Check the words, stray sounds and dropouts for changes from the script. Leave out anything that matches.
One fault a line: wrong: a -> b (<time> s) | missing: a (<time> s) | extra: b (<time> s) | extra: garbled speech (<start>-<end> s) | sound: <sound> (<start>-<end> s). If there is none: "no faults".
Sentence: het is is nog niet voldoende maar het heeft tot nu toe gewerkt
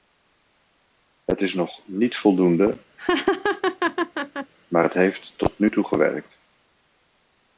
missing: is (1.5 s)
sound: laugh (3.0-4.5 s)